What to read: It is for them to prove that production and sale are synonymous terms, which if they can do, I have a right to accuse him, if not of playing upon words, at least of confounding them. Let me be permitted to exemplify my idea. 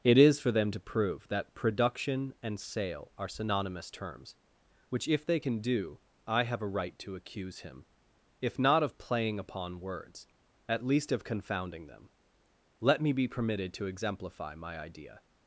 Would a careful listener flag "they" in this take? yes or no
no